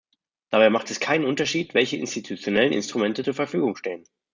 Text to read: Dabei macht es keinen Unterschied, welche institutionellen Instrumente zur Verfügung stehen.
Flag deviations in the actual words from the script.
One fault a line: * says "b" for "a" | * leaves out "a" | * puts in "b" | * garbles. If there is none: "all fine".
all fine